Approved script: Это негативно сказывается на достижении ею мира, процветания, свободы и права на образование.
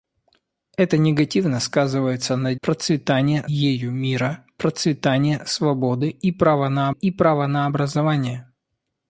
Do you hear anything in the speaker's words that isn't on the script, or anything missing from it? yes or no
yes